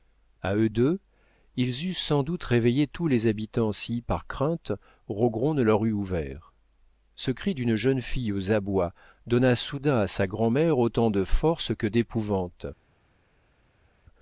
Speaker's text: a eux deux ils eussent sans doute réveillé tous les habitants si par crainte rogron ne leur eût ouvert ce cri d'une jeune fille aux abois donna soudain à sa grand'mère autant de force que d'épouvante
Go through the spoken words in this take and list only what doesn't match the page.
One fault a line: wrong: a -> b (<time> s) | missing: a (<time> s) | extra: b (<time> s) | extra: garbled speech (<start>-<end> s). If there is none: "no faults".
no faults